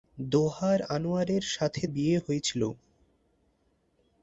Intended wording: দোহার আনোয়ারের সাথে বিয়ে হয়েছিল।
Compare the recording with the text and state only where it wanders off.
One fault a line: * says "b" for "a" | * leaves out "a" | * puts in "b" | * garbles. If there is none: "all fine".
all fine